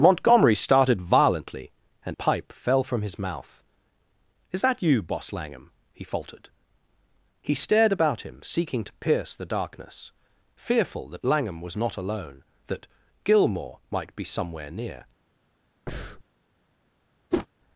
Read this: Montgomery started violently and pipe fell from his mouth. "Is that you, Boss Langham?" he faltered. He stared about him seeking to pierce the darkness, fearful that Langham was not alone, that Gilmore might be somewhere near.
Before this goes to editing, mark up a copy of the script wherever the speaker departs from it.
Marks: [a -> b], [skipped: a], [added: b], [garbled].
Montgomery started violently and pipe fell from his mouth. "Is that you, Boss Langham?" he faltered. He stared about him seeking to pierce the darkness, fearful that Langham was not alone, that Gilmore might be somewhere near.